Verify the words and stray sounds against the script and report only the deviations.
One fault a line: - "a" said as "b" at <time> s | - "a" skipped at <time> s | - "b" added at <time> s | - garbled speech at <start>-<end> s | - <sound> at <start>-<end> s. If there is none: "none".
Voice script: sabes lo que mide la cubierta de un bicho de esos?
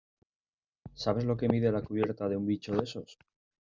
none